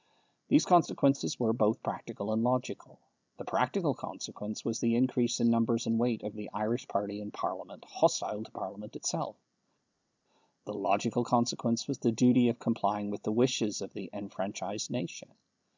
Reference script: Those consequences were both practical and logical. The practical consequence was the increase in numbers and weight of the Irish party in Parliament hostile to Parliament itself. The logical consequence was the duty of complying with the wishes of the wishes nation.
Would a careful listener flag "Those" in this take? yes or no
yes